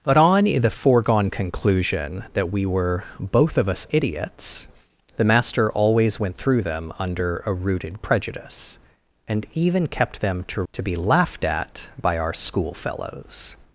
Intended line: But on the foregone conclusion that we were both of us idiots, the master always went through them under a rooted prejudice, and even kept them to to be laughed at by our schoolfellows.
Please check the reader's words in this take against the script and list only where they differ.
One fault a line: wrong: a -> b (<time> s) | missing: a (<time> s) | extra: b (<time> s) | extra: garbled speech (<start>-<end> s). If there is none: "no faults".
no faults